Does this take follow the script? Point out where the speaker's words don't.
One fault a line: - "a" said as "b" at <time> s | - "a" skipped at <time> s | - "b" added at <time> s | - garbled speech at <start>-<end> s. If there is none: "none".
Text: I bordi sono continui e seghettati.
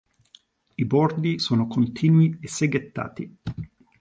none